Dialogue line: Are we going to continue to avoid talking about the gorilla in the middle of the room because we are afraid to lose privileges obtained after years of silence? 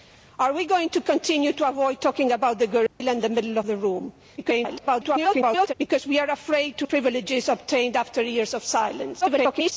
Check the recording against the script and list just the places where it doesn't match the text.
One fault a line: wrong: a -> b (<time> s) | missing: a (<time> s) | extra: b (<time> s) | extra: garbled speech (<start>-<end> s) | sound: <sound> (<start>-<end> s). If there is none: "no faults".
sound: dropout (2.9-3.0 s)
extra: garbled speech (4.4-5.7 s)
missing: lose (6.9 s)
extra: garbled speech (9.2-9.7 s)